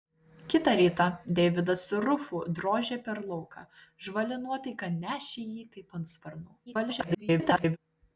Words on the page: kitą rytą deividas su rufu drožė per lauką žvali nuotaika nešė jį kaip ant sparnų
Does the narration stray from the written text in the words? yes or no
yes